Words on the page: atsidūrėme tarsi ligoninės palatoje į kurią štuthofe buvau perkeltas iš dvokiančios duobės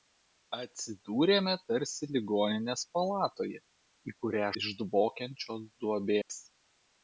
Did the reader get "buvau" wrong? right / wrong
wrong